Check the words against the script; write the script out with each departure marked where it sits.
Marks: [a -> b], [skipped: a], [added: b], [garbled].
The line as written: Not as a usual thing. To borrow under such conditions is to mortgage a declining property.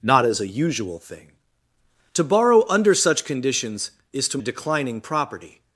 Not as a usual thing. To borrow under such conditions is to [skipped: mortgage] a declining property.